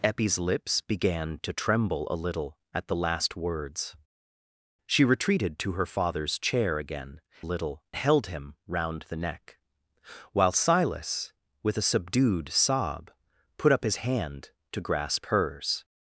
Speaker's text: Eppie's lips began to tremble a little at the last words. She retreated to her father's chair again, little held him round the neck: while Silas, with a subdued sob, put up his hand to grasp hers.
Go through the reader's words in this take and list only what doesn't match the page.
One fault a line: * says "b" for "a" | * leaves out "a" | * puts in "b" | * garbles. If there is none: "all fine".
all fine